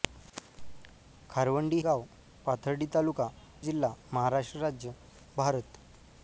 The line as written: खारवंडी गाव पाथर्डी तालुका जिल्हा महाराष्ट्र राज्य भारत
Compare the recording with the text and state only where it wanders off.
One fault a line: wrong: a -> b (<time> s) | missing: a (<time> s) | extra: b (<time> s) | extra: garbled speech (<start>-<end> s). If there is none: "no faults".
no faults